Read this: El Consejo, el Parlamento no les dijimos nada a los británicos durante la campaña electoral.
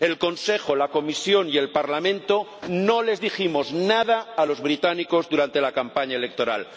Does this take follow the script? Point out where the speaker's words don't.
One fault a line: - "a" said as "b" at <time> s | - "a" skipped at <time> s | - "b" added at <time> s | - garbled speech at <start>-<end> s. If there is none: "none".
- "la Comisión y" added at 0.8 s